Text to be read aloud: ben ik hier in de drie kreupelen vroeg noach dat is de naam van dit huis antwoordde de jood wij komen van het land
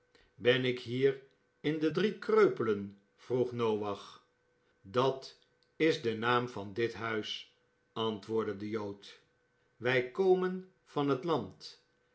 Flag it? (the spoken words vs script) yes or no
no